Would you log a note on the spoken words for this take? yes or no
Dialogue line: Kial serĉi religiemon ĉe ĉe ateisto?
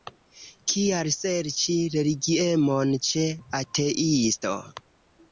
yes